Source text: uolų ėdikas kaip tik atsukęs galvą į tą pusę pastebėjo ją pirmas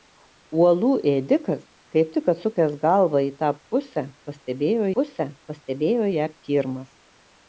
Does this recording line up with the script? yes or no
no